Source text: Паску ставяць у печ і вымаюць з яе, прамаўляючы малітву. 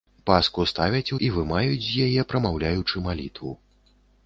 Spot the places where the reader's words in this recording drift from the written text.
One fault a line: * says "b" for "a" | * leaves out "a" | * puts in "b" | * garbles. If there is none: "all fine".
* leaves out "печ"